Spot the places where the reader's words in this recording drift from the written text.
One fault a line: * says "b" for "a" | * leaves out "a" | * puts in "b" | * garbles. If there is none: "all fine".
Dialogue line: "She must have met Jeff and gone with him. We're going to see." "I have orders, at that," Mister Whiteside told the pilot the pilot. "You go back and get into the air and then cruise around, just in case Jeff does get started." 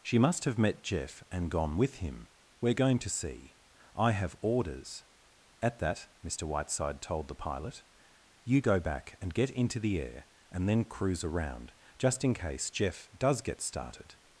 * leaves out "the pilot"